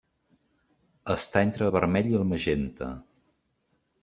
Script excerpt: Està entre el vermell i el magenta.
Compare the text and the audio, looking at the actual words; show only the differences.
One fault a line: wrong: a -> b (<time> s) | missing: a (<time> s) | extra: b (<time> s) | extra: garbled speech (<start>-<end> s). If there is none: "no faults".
no faults